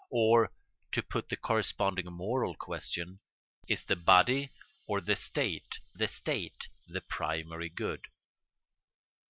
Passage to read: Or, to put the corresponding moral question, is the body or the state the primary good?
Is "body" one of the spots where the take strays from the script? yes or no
no